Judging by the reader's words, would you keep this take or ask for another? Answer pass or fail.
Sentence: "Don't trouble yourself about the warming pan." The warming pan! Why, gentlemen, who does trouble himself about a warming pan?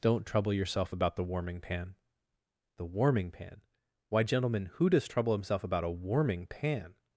pass